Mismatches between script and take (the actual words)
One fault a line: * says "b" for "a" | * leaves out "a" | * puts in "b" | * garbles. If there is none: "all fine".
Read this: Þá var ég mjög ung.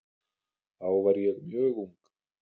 all fine